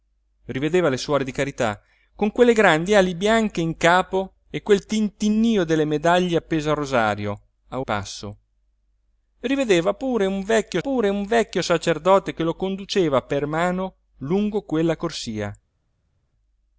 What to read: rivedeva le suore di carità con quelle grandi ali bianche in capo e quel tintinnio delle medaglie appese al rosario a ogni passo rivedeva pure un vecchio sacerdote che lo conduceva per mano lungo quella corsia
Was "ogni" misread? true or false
true